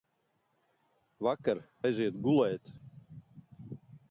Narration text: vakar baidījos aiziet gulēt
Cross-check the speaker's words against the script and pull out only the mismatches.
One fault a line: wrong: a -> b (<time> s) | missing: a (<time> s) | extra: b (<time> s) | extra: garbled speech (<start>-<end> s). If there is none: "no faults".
missing: baidījos (1.6 s)